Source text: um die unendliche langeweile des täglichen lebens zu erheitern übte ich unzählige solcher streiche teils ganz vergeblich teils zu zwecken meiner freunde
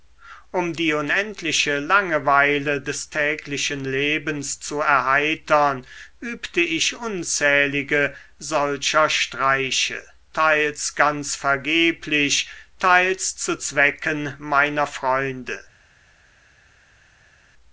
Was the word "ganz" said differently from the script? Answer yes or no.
no